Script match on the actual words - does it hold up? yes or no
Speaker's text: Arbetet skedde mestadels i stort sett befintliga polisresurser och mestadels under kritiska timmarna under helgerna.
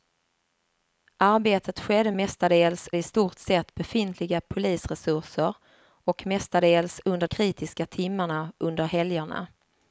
yes